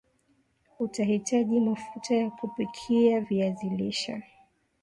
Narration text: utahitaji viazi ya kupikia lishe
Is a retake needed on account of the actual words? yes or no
yes